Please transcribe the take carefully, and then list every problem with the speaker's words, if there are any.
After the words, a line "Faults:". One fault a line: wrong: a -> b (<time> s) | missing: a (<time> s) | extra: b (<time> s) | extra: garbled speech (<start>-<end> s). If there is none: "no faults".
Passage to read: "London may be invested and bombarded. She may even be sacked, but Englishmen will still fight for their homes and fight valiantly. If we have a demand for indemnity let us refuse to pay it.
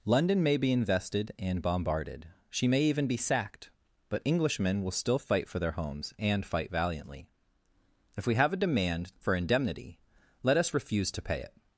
"London may be invested and bombarded. She may even be sacked, but Englishmen will still fight for their homes and fight valiantly. If we have a demand for indemnity let us refuse to pay it.
Faults:
no faults